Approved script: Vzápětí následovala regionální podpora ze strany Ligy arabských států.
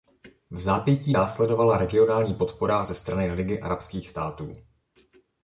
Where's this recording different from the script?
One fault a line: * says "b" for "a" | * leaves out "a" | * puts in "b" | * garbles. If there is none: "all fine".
all fine